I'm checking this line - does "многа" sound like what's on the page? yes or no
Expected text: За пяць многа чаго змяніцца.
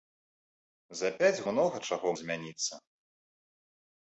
yes